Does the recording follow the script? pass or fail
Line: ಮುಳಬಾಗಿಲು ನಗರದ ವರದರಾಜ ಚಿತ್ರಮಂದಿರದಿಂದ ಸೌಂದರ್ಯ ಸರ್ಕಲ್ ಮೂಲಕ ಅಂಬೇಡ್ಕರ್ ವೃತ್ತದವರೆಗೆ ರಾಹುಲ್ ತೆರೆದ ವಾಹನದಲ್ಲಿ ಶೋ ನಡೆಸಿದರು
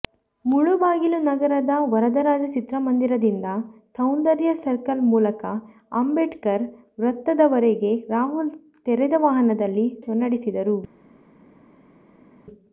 pass